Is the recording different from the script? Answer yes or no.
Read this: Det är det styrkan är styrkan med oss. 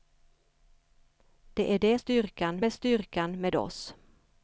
no